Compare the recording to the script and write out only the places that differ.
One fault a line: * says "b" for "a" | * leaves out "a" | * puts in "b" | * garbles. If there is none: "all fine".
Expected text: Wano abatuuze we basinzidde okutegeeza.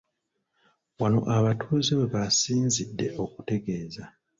all fine